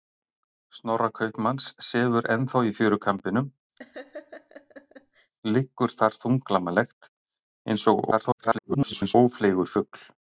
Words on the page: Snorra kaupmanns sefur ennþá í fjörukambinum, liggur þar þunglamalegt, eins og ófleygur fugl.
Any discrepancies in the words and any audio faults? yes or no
yes